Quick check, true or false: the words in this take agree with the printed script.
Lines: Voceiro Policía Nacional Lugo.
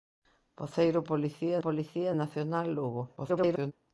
false